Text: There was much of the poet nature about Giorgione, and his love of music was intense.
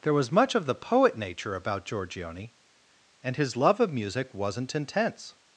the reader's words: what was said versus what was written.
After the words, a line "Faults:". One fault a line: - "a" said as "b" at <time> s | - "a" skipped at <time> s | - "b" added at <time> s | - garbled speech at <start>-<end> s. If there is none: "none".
There was much of the poet nature about Giorgione, and his love of music wasn't intense.
Faults:
- "was" said as "wasn't" at 4.3 s